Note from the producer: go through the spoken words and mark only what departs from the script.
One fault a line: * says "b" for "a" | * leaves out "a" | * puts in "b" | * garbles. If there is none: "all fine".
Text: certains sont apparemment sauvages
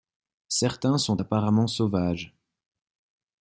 all fine